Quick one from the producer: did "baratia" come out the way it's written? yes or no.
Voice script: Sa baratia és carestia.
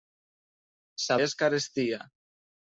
no